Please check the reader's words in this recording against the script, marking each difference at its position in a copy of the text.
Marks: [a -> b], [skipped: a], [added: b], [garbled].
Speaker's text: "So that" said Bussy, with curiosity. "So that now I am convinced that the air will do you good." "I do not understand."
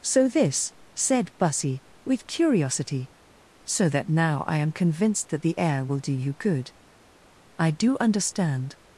"So [that" -> this] said Bussy, with curiosity. "So that now I am convinced that the air will do you good." "I do [skipped: not] understand."